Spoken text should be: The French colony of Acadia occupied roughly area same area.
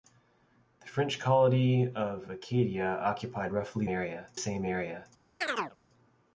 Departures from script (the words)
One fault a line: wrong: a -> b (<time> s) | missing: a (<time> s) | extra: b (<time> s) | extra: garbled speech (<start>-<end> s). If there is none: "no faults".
no faults